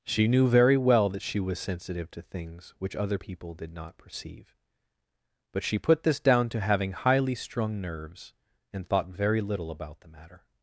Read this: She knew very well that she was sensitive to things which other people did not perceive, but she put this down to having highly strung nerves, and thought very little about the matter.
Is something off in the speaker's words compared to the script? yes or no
no